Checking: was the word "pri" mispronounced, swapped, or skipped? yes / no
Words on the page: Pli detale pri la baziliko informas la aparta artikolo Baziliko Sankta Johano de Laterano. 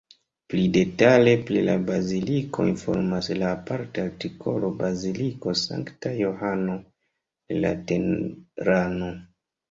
no